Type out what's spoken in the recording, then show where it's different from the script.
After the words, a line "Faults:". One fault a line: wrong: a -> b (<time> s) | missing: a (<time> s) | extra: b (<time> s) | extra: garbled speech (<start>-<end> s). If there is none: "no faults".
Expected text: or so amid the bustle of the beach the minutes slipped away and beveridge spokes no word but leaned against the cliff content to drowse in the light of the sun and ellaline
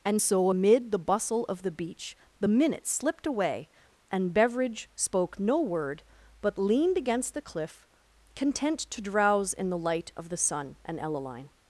and so amid the bustle of the beach the minutes slipped away and beveridge spoke no word but leaned against the cliff content to drowse in the light of the sun and ellaline
Faults:
wrong: or -> and (0.0 s)
wrong: spokes -> spoke (5.0 s)